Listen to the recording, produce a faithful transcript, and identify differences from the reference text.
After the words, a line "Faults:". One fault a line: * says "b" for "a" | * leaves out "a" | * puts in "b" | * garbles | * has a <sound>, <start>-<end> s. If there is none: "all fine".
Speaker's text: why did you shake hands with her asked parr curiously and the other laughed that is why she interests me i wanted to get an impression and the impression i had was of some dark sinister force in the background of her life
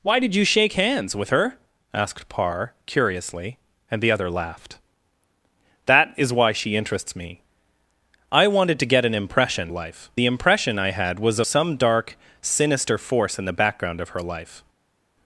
why did you shake hands with her asked parr curiously and the other laughed that is why she interests me i wanted to get an impression life the impression i had was some dark sinister force in the background of her life
Faults:
* says "life" for "and"
* leaves out "of"